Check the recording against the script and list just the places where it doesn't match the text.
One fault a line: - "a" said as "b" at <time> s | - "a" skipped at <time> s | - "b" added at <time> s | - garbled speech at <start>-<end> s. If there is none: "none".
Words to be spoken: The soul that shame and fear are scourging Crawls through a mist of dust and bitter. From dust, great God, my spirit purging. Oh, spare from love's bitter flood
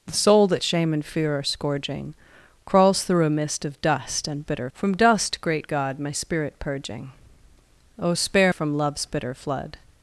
none